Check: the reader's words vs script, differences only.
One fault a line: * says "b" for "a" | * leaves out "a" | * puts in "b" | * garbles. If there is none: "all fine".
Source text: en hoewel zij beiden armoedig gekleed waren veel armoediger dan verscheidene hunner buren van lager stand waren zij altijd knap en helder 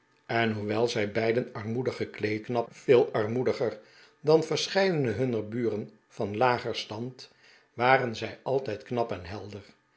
* says "knap" for "waren"